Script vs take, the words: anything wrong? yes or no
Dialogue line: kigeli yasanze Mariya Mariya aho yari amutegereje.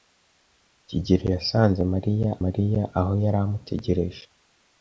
no